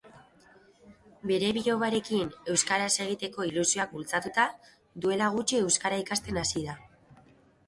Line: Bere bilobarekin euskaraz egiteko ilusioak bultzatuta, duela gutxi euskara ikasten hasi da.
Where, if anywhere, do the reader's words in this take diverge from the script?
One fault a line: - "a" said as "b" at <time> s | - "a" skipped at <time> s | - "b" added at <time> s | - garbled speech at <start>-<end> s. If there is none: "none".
none